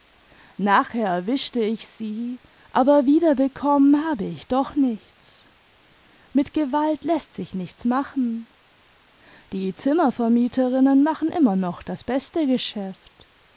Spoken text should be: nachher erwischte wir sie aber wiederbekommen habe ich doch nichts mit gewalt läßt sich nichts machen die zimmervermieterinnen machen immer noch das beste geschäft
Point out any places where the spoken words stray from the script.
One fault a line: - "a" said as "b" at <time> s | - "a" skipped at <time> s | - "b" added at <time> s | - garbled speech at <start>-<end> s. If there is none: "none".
- "wir" said as "ich" at 1.6 s